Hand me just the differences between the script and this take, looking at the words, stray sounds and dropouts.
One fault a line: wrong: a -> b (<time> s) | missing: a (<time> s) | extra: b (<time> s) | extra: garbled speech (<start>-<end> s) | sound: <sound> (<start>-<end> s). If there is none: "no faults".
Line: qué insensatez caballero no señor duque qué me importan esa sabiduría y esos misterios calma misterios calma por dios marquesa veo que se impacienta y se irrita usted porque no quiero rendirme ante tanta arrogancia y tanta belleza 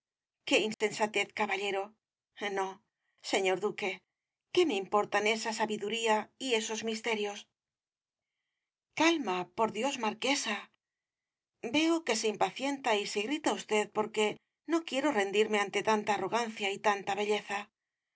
sound: dropout (0.7-0.8 s)
missing: misterios calma (9.4 s)